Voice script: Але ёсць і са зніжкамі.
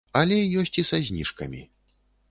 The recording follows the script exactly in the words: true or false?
true